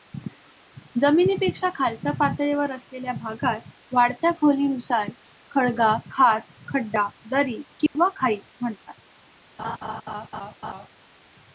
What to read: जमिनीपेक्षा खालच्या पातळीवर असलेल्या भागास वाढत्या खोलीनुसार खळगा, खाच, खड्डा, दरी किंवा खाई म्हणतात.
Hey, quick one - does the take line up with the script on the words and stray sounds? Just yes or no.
no